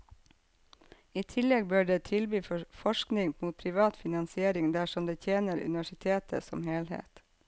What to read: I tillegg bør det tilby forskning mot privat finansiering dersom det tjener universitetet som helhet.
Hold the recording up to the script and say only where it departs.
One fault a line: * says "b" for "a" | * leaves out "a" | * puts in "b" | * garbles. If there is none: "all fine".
all fine